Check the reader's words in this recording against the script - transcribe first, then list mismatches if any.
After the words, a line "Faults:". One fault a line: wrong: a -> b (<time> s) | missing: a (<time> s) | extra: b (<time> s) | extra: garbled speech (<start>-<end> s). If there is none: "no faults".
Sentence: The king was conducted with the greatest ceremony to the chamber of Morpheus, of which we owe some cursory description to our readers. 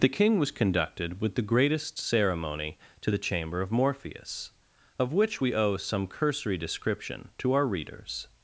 The king was conducted with the greatest ceremony to the chamber of Morpheus, of which we owe some cursory description to our readers.
Faults:
no faults